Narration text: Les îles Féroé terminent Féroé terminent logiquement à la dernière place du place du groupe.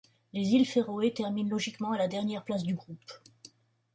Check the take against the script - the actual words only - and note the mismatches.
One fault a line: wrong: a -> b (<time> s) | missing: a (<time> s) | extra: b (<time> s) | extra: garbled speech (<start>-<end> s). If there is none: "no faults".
missing: Féroé terminent (1.5 s)
missing: place du (2.7 s)